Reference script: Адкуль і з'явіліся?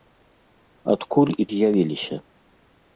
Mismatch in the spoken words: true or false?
false